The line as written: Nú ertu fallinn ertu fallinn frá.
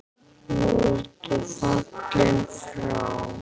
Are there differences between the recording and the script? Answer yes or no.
yes